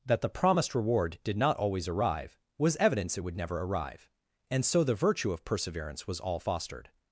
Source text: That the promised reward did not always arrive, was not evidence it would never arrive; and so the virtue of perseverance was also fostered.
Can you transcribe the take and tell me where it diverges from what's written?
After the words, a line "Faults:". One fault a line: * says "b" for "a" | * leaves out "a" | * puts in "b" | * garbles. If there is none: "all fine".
That the promised reward did not always arrive, was evidence it would never arrive; and so the virtue of perseverance was all fostered.
Faults:
* leaves out "not"
* says "all" for "also"